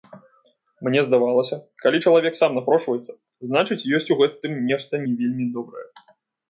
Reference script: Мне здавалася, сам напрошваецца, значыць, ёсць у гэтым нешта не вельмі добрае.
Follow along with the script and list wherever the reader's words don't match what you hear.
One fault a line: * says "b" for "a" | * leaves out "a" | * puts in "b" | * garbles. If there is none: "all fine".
* puts in "калі чалавек"